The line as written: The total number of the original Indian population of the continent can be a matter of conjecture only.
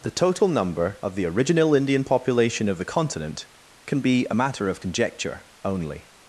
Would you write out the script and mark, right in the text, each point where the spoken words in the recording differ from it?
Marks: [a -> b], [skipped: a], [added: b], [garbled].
The total number of the original Indian population of the continent can be a matter of conjecture only.